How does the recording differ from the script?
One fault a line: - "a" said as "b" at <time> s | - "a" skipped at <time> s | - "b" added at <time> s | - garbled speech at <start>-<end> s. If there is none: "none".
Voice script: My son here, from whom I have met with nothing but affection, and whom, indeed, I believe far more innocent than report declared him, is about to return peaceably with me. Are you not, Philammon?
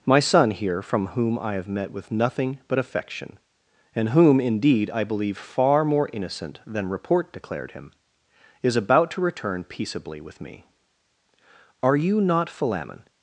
none